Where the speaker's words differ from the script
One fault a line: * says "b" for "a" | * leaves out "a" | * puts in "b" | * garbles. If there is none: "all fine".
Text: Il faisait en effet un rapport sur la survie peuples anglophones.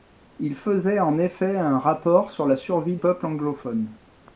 all fine